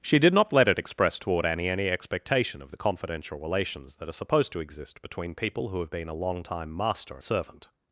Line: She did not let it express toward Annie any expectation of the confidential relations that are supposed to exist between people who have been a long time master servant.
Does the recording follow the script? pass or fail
pass